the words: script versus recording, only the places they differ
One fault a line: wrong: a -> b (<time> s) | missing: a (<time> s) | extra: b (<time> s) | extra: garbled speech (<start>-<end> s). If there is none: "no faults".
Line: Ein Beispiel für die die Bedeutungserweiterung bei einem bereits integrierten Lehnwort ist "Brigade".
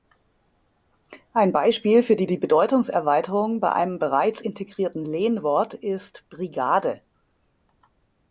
no faults